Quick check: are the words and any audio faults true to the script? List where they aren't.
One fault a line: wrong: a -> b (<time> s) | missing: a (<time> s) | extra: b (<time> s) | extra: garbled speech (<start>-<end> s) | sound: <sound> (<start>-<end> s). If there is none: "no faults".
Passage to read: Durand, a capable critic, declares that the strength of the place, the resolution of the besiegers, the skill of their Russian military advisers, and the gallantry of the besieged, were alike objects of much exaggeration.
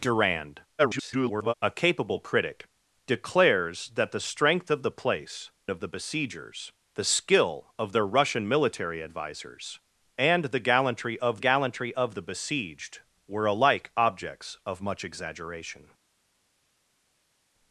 extra: garbled speech (0.8-1.5 s)
missing: the resolution (5.5 s)
extra: gallantry of (11.4 s)